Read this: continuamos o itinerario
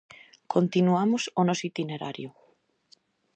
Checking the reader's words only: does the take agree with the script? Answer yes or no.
no